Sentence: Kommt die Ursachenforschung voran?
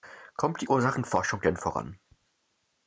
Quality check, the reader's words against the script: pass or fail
fail